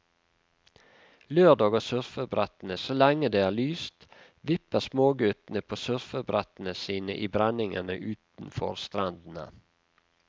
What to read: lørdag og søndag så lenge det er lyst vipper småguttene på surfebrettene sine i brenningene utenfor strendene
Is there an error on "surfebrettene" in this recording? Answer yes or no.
no